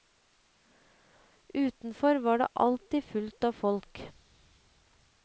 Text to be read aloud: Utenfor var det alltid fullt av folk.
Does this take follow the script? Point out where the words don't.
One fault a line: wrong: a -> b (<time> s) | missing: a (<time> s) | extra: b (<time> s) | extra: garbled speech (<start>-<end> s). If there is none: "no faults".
no faults